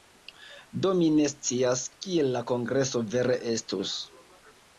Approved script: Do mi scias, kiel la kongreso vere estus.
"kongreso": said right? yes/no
yes